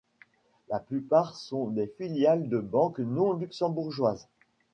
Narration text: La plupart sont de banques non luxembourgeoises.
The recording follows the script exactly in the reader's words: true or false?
false